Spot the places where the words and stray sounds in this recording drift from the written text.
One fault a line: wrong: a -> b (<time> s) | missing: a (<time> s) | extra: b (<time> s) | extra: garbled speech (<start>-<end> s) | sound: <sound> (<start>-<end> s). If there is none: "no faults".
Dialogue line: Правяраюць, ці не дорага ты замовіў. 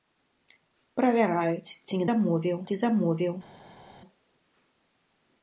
wrong: дорага -> замовіў (2.1 s)